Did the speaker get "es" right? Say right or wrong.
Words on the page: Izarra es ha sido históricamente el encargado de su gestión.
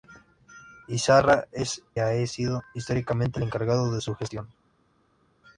right